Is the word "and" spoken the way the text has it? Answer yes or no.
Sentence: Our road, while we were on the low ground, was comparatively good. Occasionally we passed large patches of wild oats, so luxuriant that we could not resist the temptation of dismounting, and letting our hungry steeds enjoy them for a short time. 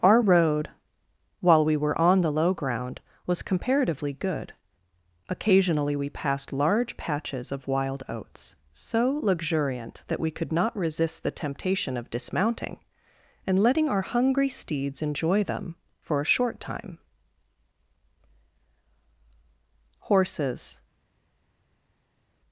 yes